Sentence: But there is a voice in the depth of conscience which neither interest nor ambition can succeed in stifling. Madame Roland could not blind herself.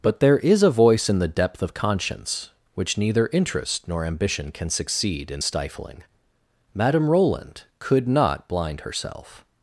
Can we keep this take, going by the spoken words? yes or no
yes